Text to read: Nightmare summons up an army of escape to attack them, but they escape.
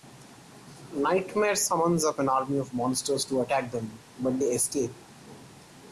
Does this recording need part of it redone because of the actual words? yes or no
yes